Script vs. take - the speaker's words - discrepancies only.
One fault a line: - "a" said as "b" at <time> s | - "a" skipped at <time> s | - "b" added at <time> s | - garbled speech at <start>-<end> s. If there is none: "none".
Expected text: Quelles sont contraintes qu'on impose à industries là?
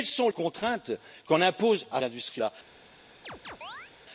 none